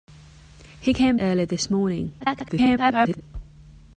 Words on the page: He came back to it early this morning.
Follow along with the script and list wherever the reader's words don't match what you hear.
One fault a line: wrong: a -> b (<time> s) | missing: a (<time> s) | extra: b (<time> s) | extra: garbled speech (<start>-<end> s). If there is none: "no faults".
missing: back to it (1.1 s)
extra: garbled speech (2.2-3.2 s)